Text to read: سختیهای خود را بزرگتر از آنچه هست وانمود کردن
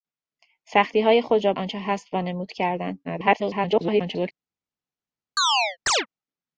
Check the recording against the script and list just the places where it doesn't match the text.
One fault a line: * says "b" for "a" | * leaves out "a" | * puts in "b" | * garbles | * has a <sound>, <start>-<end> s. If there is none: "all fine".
* leaves out "بزرگتر از"
* garbles
* has a chirp, 5.4-6.1 s